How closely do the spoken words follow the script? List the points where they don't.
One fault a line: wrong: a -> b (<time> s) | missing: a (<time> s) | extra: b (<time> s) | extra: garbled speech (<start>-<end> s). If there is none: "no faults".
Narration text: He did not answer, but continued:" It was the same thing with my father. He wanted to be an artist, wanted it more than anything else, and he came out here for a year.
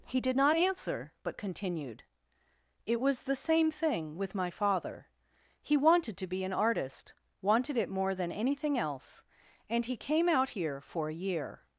no faults